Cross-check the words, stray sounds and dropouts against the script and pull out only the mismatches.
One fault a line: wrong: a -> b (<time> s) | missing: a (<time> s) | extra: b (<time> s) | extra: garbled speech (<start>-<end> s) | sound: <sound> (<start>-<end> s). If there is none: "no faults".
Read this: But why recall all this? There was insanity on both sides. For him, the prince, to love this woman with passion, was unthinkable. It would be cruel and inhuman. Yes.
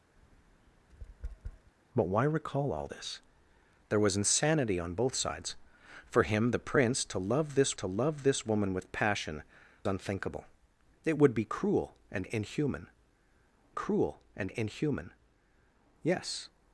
sound: tap (0.2-1.7 s)
extra: to love this (7.7 s)
missing: was (9.4 s)
extra: cruel and inhuman (13.7 s)